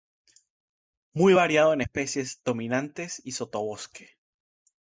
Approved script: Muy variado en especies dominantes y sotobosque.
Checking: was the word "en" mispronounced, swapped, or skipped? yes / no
no